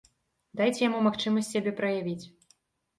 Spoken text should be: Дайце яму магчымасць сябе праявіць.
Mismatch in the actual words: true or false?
false